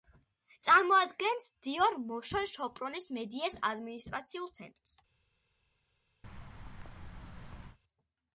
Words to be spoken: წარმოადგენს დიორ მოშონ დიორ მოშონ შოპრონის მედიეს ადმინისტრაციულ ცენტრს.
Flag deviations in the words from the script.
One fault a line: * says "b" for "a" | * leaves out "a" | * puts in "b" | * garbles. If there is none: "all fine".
* leaves out "დიორ მოშონ"